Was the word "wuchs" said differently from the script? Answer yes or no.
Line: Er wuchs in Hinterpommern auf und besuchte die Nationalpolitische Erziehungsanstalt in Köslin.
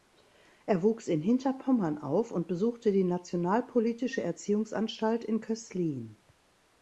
no